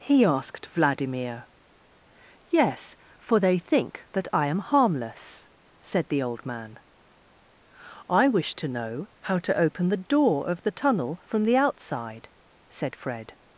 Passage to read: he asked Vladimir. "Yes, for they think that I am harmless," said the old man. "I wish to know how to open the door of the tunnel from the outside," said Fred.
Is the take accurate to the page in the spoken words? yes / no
yes